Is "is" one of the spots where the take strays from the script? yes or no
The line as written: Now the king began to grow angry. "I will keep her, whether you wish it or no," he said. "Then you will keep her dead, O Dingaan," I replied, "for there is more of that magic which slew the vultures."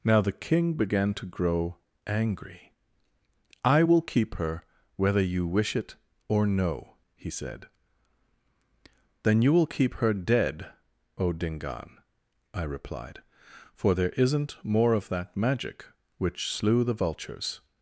yes